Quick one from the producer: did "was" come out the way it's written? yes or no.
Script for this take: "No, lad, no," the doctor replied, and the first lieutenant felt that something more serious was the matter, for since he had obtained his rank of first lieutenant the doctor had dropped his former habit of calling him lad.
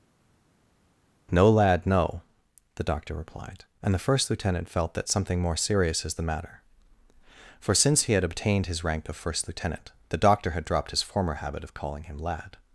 no